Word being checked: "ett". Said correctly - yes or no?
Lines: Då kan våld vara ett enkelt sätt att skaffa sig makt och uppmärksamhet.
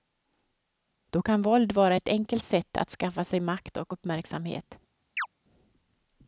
yes